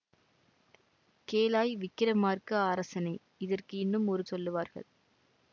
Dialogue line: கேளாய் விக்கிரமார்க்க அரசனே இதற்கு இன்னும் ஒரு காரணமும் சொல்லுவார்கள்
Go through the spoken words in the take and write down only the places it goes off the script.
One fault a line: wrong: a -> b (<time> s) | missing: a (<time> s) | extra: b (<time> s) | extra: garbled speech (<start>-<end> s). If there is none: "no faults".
missing: காரணமும் (4.2 s)